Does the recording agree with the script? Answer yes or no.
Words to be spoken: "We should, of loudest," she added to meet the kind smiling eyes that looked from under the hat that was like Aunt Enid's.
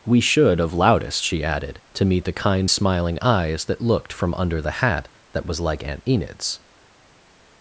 yes